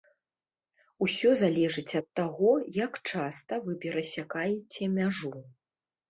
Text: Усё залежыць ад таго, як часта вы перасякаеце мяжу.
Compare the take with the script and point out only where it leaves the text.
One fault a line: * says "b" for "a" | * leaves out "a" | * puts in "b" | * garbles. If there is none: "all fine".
all fine